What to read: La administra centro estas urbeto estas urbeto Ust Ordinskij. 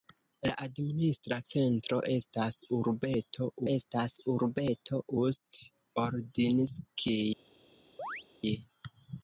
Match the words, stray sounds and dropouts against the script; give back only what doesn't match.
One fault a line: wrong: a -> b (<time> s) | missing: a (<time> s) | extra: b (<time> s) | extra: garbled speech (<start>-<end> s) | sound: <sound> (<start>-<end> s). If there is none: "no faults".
sound: chirp (8.0-8.2 s)